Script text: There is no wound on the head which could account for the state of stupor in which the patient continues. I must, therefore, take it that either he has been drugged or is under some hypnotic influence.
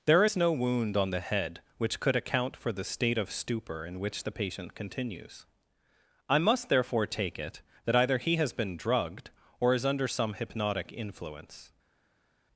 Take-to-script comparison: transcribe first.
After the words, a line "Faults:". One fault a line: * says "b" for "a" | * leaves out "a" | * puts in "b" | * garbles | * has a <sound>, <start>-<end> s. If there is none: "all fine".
There is no wound on the head which could account for the state of stupor in which the patient continues. I must, therefore, take it that either he has been drugged or is under some hypnotic influence.
Faults:
all fine